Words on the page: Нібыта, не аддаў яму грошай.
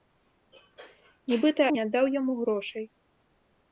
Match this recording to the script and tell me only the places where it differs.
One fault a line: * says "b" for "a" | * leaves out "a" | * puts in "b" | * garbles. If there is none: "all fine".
all fine